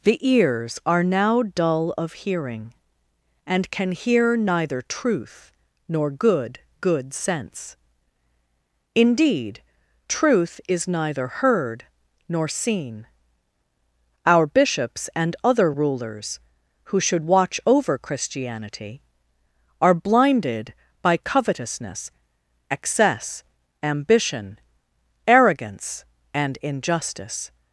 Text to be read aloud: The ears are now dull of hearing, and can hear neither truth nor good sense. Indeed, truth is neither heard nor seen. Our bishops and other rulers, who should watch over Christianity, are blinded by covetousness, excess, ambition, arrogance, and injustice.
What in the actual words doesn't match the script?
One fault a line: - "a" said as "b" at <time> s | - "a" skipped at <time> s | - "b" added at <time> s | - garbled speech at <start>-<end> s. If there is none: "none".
- "good" added at 6.8 s